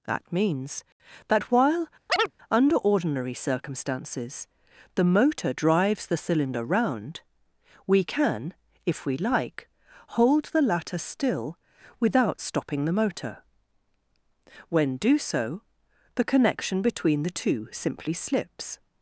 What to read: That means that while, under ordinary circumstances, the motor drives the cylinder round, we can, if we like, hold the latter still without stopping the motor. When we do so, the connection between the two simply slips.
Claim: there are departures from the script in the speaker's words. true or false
true